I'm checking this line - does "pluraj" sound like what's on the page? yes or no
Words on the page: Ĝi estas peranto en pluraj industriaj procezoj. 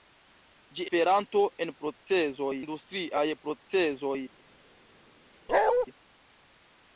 no